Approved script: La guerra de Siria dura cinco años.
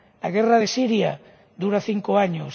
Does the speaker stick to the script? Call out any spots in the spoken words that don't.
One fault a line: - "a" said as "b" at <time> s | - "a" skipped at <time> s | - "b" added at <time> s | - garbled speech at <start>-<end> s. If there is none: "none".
none